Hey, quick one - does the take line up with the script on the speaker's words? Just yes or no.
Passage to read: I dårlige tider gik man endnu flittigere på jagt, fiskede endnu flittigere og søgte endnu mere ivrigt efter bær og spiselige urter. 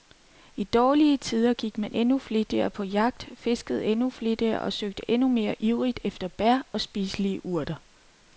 yes